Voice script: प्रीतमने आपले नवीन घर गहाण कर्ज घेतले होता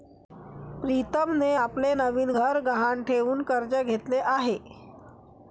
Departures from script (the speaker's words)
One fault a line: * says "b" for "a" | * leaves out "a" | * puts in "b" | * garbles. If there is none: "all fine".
* puts in "ठेवून"
* says "आहे" for "होता"